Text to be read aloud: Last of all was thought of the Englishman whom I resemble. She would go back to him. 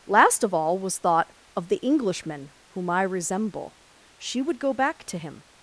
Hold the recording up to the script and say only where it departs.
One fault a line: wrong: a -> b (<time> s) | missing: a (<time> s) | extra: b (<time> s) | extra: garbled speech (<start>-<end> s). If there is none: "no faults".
no faults